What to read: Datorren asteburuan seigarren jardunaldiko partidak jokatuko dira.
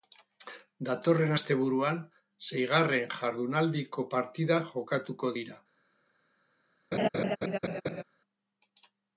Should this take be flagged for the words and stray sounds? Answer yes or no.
yes